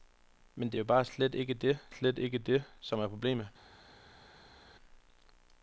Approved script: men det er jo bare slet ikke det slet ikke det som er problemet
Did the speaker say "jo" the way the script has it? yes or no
yes